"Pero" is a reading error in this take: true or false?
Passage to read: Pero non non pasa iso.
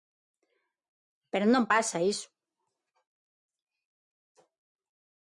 false